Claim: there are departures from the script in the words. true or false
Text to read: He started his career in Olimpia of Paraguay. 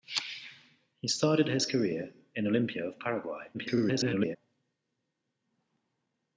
true